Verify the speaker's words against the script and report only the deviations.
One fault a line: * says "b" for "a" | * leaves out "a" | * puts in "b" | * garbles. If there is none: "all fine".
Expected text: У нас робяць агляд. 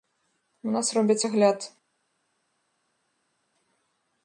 all fine